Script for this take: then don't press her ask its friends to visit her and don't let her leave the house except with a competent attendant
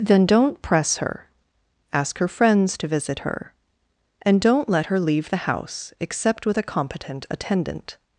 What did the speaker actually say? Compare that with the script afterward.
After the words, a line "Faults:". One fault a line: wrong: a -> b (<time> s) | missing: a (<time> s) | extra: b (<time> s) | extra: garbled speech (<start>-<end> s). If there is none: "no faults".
then don't press her ask her friends to visit her and don't let her leave the house except with a competent attendant
Faults:
wrong: its -> her (2.2 s)